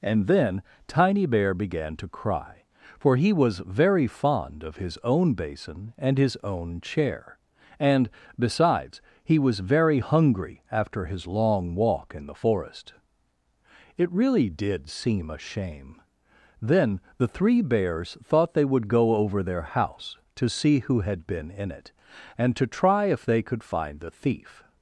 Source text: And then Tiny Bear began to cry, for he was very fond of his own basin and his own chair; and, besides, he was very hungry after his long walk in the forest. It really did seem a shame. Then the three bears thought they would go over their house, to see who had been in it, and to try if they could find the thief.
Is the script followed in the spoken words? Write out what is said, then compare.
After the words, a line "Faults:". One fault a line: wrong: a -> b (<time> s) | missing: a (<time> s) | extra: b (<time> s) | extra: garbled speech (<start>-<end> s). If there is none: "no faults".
And then Tiny Bear began to cry, for he was very fond of his own basin and his own chair; and, besides, he was very hungry after his long walk in the forest. It really did seem a shame. Then the three bears thought they would go over their house, to see who had been in it, and to try if they could find the thief.
Faults:
no faults